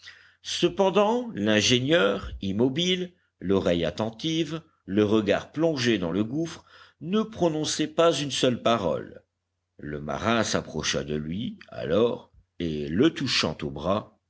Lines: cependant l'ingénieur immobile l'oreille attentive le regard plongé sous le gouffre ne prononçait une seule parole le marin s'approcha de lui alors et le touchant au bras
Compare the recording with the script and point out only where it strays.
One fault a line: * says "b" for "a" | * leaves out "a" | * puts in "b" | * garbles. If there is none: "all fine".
* says "dans" for "sous"
* puts in "pas"